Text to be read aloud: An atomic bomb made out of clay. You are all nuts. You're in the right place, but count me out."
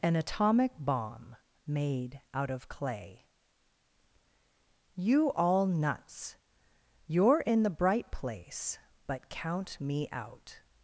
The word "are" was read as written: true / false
false